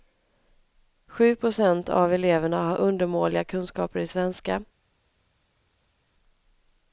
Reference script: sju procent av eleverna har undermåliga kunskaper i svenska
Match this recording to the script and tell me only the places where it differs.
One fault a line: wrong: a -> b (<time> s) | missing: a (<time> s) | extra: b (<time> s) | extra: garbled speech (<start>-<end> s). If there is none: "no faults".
no faults